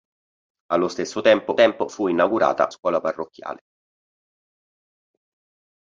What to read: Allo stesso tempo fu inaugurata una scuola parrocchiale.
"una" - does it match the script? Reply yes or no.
no